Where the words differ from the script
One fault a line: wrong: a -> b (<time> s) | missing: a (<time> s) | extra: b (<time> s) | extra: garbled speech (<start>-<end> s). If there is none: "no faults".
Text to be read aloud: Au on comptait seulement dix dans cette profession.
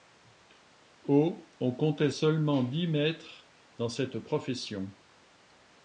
extra: maîtres (2.9 s)